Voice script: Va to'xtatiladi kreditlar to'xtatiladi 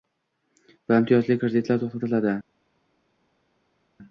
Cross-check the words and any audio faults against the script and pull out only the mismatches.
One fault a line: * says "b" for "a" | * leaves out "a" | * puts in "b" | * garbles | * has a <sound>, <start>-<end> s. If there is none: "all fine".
* says "imtiyozli" for "to'xtatiladi"